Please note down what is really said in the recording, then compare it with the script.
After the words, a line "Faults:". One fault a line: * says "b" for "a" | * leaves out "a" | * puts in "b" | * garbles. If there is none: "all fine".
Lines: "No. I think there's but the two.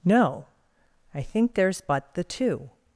"No. I think there's but the two.
Faults:
all fine